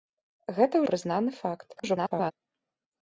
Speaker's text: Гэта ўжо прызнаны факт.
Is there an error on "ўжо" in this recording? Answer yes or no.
yes